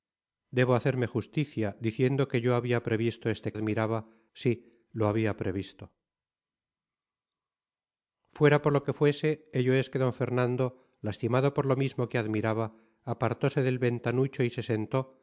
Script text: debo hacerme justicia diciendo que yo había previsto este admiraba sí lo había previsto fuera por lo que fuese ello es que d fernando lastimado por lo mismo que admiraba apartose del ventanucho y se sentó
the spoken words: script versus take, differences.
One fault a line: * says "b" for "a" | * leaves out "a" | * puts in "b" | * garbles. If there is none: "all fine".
all fine